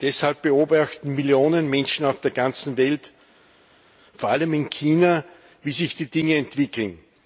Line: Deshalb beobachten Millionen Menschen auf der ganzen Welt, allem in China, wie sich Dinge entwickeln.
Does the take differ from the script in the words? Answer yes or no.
yes